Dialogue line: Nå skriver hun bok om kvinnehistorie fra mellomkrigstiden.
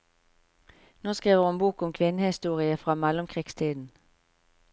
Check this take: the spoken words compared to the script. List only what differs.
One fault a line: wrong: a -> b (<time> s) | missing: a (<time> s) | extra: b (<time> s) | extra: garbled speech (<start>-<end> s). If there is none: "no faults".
no faults